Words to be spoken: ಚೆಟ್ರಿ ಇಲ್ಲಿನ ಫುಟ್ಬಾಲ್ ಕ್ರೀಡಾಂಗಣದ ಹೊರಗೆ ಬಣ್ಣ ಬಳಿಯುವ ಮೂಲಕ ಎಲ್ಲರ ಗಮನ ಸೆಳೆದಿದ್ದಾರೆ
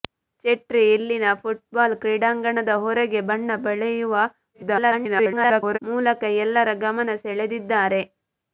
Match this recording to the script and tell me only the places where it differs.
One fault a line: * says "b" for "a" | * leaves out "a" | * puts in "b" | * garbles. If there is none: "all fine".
* garbles